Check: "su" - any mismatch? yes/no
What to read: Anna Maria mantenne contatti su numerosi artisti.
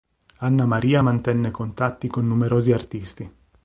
yes